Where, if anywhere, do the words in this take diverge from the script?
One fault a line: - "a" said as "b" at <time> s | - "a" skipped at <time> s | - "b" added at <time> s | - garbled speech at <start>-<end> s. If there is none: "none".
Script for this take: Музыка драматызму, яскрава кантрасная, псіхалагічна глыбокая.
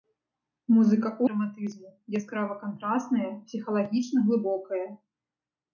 none